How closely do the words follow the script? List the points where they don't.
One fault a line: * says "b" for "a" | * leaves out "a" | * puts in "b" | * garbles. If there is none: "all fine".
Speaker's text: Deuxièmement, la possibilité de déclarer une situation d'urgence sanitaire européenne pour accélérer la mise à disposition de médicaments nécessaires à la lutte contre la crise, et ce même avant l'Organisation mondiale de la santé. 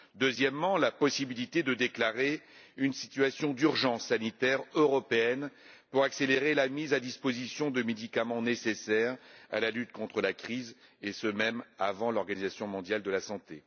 all fine